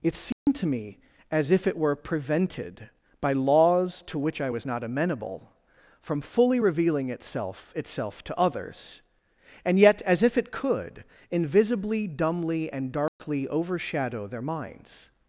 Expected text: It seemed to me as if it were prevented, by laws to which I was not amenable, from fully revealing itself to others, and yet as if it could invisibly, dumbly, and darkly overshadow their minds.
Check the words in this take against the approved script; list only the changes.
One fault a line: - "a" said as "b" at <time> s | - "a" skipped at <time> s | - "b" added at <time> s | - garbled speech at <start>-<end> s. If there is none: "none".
- "itself" added at 7.8 s